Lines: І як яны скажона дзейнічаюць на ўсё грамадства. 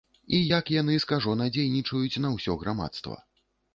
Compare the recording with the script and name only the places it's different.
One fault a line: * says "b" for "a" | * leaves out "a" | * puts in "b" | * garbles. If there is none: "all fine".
all fine